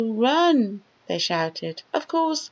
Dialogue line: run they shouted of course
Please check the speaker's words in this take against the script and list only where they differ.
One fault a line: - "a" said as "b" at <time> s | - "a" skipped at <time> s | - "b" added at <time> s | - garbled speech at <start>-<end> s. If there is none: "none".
none